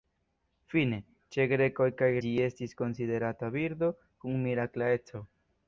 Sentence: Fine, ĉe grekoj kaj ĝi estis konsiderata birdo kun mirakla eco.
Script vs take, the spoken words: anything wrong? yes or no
no